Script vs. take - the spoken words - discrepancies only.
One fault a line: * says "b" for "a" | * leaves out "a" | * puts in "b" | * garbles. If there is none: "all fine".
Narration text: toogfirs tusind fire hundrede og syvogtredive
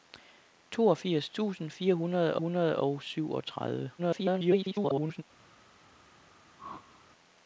* puts in "hundrede"
* garbles